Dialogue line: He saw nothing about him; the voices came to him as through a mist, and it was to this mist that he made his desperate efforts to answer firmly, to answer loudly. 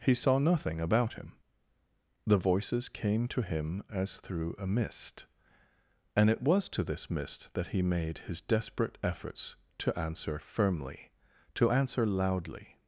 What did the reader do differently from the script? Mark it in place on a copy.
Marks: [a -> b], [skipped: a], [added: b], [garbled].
He saw nothing about him; the voices came to him as through a mist, and it was to this mist that he made his desperate efforts to answer firmly, to answer loudly.